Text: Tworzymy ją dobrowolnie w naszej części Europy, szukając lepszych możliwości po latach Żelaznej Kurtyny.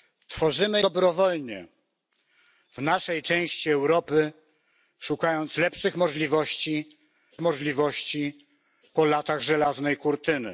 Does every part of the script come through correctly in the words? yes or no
no